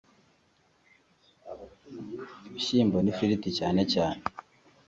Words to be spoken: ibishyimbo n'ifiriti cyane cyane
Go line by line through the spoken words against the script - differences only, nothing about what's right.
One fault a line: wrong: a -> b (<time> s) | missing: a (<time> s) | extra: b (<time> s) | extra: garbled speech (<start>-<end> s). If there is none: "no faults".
no faults